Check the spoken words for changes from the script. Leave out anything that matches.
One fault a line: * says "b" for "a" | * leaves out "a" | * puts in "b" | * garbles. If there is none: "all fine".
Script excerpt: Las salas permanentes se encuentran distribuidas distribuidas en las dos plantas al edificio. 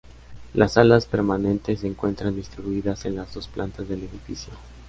* leaves out "distribuidas"
* says "del" for "al"